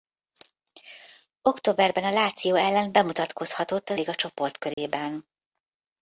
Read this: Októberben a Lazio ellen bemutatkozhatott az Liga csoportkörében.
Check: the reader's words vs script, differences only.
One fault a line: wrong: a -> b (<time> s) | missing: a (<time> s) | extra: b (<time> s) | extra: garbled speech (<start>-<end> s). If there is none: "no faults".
no faults